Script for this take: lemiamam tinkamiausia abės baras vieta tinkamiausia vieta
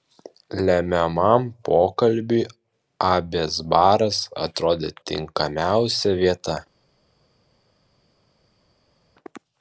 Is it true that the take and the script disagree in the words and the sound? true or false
true